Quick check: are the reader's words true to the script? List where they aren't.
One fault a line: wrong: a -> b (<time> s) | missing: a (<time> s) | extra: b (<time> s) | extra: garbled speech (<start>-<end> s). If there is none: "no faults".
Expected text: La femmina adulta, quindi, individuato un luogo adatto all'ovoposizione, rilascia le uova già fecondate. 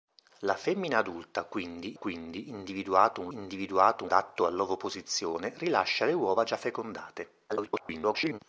extra: quindi (1.9 s)
wrong: luogo -> individuato (3.3 s)
extra: garbled speech (7.5-8.4 s)